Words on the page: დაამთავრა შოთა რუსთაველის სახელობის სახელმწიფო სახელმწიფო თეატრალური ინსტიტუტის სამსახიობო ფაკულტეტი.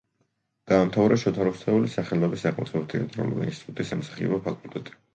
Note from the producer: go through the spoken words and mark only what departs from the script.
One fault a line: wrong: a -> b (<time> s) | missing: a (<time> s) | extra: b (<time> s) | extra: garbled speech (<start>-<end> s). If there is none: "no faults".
missing: სახელმწიფო (2.9 s)